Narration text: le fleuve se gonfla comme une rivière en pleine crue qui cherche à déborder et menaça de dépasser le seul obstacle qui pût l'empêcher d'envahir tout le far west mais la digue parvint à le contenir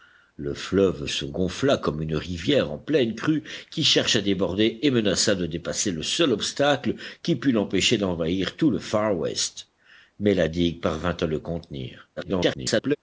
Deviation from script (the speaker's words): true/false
true